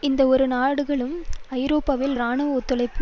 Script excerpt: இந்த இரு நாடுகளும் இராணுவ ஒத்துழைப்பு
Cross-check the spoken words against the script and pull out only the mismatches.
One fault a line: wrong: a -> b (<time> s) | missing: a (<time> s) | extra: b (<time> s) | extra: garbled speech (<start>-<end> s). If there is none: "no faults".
extra: ஐரோப்பாவில் (1.6 s)